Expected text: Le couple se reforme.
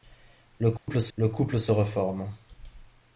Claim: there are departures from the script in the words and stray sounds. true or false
true